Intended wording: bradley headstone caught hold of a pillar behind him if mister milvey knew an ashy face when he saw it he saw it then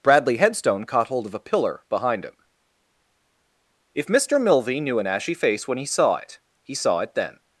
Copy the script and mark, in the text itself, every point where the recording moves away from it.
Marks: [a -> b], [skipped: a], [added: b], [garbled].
bradley headstone caught hold of a pillar behind him if mister milvey knew an ashy face when he saw it he saw it then